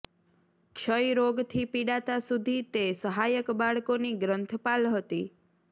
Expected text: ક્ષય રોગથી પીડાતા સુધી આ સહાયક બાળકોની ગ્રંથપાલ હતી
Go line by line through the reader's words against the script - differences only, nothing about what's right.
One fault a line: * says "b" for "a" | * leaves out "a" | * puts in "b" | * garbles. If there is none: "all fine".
* says "તે" for "આ"